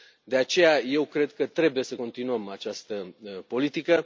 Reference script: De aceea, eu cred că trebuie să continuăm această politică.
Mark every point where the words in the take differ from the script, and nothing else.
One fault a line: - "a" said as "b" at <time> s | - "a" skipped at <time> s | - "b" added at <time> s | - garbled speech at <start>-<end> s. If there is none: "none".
none